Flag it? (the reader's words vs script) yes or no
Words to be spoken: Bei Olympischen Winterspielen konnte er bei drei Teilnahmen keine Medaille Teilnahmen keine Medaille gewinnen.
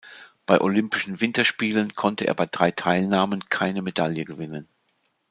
yes